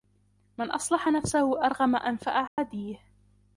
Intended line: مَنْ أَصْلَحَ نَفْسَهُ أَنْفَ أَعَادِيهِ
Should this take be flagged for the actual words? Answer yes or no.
yes